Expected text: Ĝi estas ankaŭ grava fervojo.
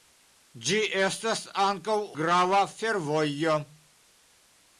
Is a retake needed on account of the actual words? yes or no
no